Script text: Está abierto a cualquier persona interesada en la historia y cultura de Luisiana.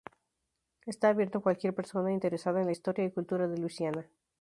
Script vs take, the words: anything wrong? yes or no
no